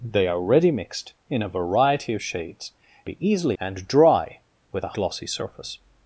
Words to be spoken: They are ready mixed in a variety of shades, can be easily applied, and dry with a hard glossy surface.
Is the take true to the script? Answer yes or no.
no